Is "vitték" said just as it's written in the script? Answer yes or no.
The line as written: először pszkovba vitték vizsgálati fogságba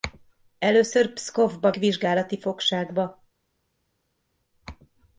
no